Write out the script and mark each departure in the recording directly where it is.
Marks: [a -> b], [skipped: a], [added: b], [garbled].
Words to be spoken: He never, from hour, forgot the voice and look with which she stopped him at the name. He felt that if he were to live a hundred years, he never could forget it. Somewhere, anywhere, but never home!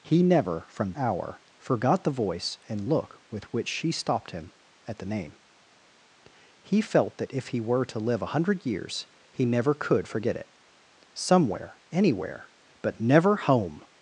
He never, from hour, forgot the voice and look with which she stopped him at the name. He felt that if he were to live a hundred years, he never could forget it. Somewhere, anywhere, but never home!